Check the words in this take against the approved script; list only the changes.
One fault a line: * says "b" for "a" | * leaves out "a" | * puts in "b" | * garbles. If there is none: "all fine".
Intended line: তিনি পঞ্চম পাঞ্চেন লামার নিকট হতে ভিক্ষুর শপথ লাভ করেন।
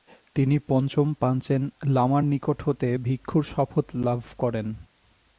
all fine